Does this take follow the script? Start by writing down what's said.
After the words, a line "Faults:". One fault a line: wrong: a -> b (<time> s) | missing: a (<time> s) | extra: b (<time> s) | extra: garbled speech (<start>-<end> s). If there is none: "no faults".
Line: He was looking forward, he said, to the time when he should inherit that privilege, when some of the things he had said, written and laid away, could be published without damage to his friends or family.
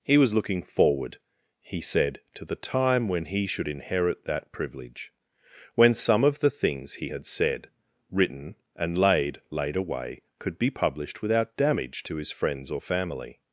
He was looking forward, he said, to the time when he should inherit that privilege, when some of the things he had said, written and laid laid away, could be published without damage to his friends or family.
Faults:
extra: laid (9.5 s)